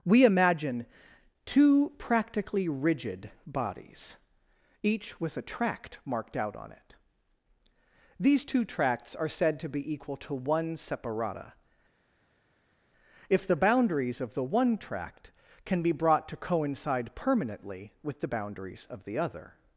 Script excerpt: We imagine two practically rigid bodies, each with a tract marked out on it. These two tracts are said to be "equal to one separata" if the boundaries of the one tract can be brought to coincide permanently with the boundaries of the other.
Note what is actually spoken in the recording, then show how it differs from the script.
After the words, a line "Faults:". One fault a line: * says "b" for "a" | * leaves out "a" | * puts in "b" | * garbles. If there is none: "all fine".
We imagine two practically rigid bodies, each with a tract marked out on it. These two tracts are said to be "equal to one separata" if the boundaries of the one tract can be brought to coincide permanently with the boundaries of the other.
Faults:
all fine